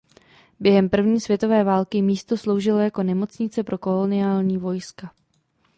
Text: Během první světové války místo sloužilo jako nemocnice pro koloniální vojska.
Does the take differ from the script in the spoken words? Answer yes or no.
no